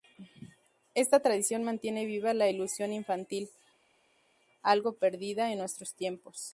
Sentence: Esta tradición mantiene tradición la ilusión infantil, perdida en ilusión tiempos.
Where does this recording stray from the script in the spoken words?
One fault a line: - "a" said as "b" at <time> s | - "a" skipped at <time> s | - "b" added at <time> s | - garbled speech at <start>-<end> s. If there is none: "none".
- "tradición" said as "viva" at 2.1 s
- "algo" added at 4.6 s
- "ilusión" said as "nuestros" at 5.6 s